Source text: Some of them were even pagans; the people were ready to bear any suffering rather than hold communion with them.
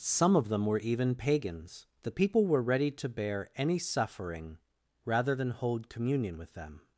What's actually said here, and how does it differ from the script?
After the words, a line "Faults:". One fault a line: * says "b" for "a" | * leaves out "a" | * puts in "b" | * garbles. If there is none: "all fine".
Some of them were even pagans; the people were ready to bear any suffering rather than hold communion with them.
Faults:
all fine